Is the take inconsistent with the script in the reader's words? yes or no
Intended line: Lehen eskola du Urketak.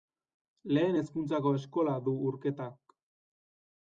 yes